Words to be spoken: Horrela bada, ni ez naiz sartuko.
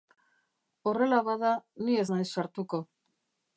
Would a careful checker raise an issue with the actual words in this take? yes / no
no